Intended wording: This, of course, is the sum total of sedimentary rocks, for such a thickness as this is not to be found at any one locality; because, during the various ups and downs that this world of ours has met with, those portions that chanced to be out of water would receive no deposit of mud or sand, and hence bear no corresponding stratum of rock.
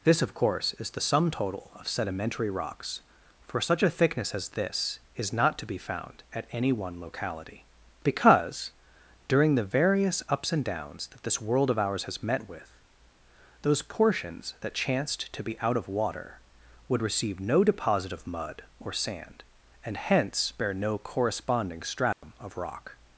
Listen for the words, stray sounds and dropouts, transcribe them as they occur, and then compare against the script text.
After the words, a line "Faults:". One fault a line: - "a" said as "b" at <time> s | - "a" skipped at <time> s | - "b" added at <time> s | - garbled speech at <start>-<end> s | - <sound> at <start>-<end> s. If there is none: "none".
This, of course, is the sum total of sedimentary rocks, for such a thickness as this is not to be found at any one locality; because, during the various ups and downs that this world of ours has met with, those portions that chanced to be out of water would receive no deposit of mud or sand, and hence bear no corresponding stratum of rock.
Faults:
- dropout at 22.1-22.2 s